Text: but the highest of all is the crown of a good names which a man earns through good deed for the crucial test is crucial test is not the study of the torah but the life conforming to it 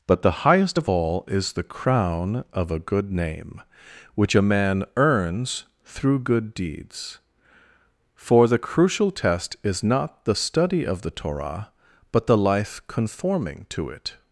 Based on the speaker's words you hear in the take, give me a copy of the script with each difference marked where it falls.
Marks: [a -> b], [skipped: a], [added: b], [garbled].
but the highest of all is the crown of a good [names -> name] which a man earns through good [deed -> deeds] for the crucial test is [skipped: crucial test is] not the study of the torah but the life conforming to it